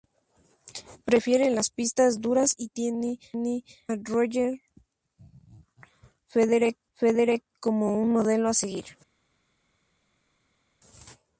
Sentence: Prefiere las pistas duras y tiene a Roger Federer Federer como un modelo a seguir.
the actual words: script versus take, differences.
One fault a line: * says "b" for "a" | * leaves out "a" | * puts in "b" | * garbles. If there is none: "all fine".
all fine